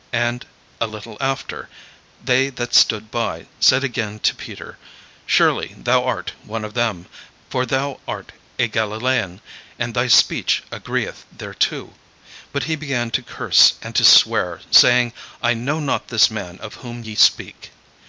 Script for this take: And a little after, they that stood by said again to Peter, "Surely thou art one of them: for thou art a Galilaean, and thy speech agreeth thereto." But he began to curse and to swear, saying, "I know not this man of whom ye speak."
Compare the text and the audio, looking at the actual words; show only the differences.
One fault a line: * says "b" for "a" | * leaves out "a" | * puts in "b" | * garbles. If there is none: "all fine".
all fine